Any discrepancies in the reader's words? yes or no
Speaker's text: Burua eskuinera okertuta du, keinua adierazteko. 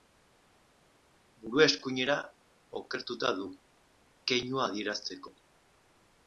no